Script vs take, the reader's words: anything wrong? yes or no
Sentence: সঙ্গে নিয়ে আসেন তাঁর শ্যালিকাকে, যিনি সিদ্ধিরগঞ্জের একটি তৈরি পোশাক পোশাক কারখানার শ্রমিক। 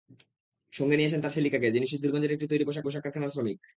no